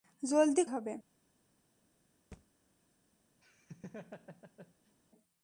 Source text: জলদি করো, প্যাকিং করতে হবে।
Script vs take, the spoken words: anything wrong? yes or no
yes